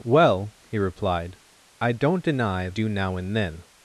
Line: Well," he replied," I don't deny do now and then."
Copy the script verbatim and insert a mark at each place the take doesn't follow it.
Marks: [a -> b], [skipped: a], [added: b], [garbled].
Well," he replied," I don't deny do now and then."